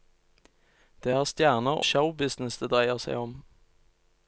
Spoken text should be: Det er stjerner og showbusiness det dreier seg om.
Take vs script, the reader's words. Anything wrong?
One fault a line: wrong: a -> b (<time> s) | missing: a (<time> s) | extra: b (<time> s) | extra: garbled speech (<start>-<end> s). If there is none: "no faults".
missing: og (1.8 s)